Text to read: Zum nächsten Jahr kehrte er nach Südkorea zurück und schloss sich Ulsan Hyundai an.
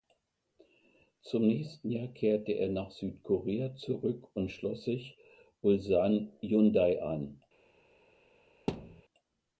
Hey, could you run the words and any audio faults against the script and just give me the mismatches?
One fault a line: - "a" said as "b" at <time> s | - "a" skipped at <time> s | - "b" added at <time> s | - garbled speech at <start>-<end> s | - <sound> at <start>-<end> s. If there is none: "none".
- thud at 8.7-9.0 s